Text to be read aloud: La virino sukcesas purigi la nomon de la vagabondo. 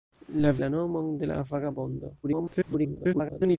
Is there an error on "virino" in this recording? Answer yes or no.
yes